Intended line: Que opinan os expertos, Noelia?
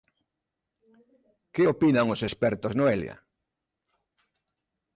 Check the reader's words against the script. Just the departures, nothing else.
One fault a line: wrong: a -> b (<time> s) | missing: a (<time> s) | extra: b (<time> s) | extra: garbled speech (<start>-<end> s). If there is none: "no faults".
no faults